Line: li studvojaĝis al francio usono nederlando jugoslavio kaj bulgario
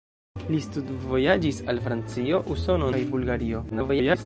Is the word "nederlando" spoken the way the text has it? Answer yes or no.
no